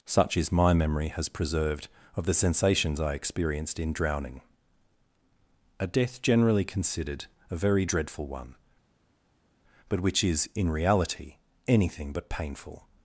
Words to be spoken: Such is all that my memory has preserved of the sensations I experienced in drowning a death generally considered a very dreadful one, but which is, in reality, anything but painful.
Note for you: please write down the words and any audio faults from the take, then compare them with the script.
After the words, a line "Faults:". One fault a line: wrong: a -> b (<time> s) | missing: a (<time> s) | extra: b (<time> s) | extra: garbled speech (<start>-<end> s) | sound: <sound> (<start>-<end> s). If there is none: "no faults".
Such is my memory has preserved of the sensations I experienced in drowning a death generally considered a very dreadful one, but which is, in reality, anything but painful.
Faults:
missing: all that (0.5 s)